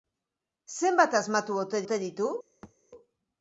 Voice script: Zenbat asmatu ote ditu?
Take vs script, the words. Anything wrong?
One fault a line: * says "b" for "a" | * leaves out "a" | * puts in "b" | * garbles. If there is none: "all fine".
* puts in "ote"